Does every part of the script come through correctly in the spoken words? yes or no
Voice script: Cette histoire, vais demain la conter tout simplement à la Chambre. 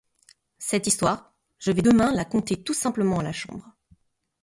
no